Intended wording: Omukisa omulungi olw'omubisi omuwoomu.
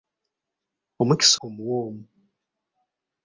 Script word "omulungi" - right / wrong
wrong